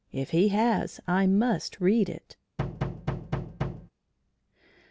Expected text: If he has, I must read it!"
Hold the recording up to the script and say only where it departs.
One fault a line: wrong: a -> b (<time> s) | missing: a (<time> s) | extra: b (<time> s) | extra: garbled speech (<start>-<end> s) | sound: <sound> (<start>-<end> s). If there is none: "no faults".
sound: thud (2.6-3.9 s)